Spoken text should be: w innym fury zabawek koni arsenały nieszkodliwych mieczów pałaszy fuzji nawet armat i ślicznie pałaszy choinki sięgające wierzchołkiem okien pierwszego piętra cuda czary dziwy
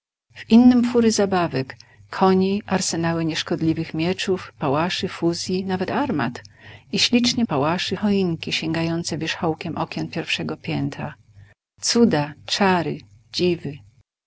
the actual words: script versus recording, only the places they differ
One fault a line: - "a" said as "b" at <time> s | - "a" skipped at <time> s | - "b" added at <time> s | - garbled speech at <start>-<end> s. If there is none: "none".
none